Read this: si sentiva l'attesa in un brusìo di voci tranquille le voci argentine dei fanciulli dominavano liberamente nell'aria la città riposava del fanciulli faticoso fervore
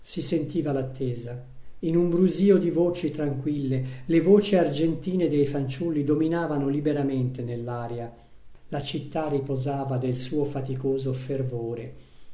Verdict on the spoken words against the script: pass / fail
fail